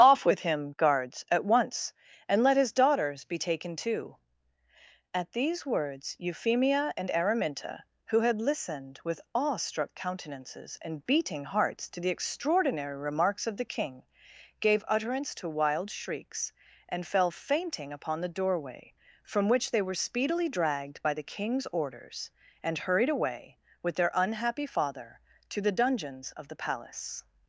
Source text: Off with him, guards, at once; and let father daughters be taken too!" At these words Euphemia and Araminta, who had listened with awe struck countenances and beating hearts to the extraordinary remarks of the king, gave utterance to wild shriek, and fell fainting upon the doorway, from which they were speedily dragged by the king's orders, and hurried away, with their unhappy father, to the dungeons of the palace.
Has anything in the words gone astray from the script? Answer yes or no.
yes